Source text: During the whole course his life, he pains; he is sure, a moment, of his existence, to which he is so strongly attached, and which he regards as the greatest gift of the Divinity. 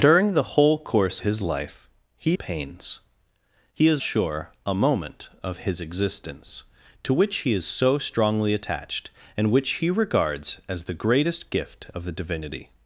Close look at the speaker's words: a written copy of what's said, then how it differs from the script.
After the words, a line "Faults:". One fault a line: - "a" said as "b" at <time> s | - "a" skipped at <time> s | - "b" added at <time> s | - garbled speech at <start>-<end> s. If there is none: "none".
During the whole course his life, he pains; he is sure, a moment, of his existence, to which he is so strongly attached, and which he regards as the greatest gift of the Divinity.
Faults:
none